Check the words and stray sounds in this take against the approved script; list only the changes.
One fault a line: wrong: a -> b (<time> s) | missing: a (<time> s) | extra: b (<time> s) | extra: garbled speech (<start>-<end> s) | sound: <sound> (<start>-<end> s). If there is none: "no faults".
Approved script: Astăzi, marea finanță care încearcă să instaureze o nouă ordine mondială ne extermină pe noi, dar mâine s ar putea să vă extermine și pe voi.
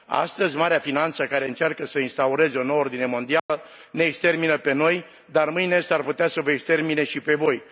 sound: dropout (3.4-3.5 s)